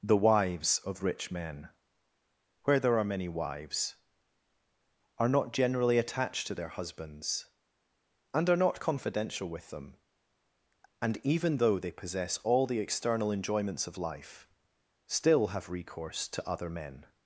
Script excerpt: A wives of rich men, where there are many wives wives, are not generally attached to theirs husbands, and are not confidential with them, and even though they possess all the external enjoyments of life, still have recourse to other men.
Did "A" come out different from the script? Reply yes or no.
yes